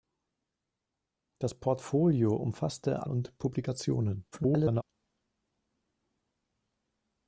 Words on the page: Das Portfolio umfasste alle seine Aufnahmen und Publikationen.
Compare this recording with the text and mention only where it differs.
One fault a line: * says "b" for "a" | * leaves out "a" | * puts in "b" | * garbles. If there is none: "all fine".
* leaves out "alle seine Aufnahmen"
* garbles